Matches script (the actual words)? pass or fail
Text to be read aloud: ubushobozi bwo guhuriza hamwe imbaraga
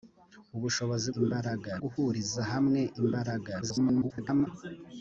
fail